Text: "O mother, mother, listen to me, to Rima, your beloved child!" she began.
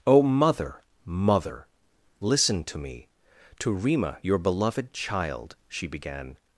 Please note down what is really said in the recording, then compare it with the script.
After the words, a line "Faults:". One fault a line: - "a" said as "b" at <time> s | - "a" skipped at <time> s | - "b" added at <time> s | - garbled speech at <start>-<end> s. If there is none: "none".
"O mother, mother, listen to me, to Rima, your beloved child!" she began.
Faults:
none